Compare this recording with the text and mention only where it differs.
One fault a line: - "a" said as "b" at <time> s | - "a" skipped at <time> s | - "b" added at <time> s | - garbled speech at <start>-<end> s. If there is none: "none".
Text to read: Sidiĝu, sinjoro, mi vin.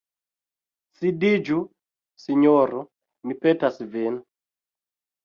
- "petas" added at 3.5 s